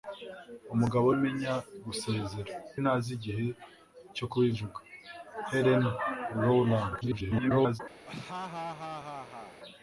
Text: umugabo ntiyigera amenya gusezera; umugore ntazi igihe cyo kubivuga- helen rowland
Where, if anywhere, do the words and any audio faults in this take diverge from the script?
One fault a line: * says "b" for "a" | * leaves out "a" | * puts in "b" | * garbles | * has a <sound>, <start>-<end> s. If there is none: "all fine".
* leaves out "ntiyigera"
* leaves out "umugore"
* garbles
* has a laugh, 8.1-9.6 s